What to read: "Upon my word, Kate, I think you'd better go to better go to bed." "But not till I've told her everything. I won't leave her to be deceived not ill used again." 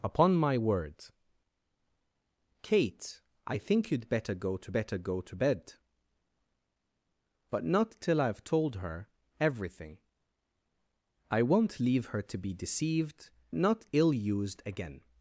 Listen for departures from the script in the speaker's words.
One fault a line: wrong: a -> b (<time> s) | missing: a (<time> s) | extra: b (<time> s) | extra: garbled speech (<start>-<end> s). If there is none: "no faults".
no faults